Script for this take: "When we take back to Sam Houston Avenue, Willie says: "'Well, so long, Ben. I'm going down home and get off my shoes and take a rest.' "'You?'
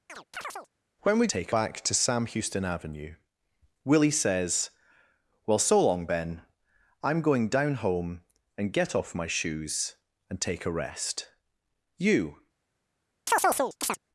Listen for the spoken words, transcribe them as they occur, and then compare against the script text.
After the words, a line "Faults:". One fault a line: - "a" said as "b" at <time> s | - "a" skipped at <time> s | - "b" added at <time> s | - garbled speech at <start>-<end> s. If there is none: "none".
"When we take back to Sam Houston Avenue, Willie says: "'Well, so long, Ben. I'm going down home and get off my shoes and take a rest.' "'You?'
Faults:
none